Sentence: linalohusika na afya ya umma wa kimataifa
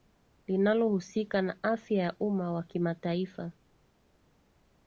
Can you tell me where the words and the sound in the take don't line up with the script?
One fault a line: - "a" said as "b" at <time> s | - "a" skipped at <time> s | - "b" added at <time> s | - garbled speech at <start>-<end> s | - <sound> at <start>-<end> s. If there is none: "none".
none